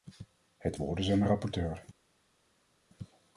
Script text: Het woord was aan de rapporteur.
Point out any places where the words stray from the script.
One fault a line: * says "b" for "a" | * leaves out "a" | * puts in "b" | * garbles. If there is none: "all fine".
* says "is" for "was"